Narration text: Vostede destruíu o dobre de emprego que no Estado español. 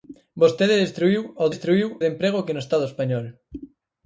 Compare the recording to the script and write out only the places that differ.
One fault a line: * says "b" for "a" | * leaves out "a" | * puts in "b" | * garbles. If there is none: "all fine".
* says "destruíu" for "dobre"